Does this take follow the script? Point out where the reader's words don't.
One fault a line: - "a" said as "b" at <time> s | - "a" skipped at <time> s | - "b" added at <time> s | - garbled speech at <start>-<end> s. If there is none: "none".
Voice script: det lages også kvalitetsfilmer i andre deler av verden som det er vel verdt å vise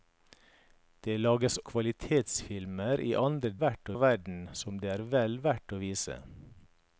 - "også" skipped at 1.6 s
- "deler" said as "verdt" at 3.6 s